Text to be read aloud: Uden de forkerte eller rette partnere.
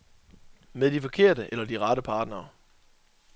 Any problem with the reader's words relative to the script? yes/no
yes